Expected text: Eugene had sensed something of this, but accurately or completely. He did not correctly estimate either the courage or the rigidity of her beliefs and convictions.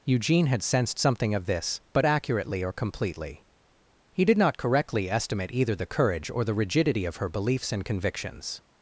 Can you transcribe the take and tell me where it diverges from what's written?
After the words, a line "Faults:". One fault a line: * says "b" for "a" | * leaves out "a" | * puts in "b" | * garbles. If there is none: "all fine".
Eugene had sensed something of this, but accurately or completely. He did not correctly estimate either the courage or the rigidity of her beliefs and convictions.
Faults:
all fine